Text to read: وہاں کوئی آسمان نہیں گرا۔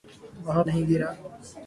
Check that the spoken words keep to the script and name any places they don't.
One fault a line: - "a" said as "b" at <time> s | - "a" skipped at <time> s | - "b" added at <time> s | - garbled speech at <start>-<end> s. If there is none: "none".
- "کوئی آسمان" skipped at 0.6 s